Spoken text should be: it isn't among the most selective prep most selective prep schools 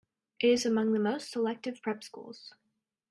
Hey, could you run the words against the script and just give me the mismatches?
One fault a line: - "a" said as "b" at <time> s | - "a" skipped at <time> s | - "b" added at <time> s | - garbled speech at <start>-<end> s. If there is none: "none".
- "isn't" said as "is" at 0.5 s
- "most selective prep" skipped at 2.0 s